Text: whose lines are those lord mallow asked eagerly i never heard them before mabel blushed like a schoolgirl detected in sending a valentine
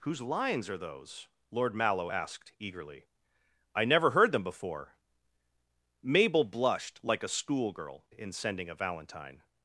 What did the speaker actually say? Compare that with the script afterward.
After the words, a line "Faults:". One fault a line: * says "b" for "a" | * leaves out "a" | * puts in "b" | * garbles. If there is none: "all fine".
whose lines are those lord mallow asked eagerly i never heard them before mabel blushed like a schoolgirl in sending a valentine
Faults:
* leaves out "detected"